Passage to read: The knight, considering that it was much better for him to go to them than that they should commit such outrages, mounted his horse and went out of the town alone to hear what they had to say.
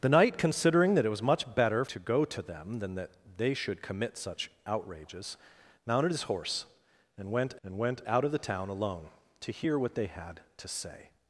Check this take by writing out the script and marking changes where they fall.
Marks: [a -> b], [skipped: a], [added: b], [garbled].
The knight, considering that it was much better [skipped: for him] to go to them than that they should commit such outrages, mounted his horse and went [added: and went] out of the town alone to hear what they had to say.